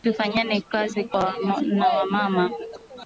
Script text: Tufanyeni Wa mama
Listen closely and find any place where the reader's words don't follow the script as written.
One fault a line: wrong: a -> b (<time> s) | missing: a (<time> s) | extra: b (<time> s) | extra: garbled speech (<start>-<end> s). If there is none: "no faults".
extra: Kazi na (0.6 s)